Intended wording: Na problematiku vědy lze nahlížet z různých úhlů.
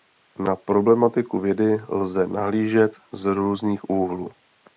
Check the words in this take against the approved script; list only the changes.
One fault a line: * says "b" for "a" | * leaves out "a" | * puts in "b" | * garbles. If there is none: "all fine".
all fine